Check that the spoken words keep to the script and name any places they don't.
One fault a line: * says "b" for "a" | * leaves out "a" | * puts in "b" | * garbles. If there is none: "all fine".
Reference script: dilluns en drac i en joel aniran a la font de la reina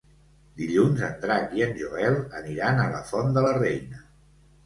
all fine